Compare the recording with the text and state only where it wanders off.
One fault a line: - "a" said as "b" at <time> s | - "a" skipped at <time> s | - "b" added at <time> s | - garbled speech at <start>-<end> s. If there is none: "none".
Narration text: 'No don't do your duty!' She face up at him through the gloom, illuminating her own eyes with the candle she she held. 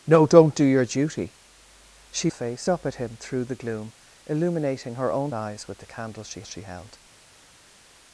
none